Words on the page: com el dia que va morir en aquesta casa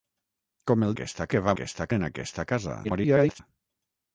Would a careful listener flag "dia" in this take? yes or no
yes